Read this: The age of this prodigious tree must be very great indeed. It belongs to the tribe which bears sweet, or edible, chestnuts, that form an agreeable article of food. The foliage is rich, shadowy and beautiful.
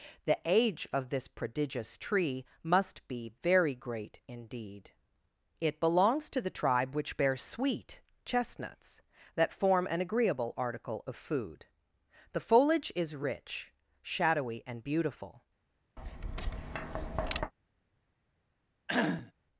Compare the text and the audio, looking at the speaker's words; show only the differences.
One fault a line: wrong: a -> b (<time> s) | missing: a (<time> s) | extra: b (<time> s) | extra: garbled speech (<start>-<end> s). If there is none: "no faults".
missing: or edible (8.0 s)